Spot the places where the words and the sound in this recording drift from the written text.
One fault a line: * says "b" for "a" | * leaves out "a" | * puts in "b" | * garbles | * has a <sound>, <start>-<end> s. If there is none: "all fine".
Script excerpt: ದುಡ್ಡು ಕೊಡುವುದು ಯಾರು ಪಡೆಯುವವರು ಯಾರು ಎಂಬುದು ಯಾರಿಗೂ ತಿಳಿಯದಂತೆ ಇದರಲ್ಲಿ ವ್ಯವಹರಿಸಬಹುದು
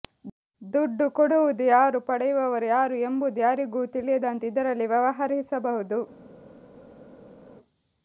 all fine